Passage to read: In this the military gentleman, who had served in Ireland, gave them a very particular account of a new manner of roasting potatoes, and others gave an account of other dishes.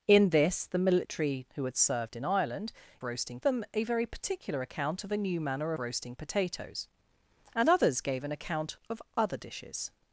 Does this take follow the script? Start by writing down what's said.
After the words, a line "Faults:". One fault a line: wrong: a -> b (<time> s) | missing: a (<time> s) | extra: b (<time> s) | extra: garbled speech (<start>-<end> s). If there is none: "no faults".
In this the military who had served in Ireland, roasting them a very particular account of a new manner roasting potatoes, and others gave an account of other dishes.
Faults:
missing: gentleman (1.4 s)
wrong: gave -> roasting (3.0 s)
missing: of (5.7 s)